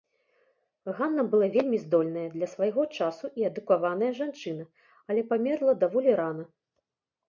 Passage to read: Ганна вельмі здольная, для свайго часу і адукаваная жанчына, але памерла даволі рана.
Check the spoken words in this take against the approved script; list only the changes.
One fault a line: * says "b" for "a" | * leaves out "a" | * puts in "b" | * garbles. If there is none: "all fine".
* puts in "была"